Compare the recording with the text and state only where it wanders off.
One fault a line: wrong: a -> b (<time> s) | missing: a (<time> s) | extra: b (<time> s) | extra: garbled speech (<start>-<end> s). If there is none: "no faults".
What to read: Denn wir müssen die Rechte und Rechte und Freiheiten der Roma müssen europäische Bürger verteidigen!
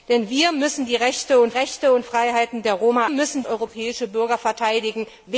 no faults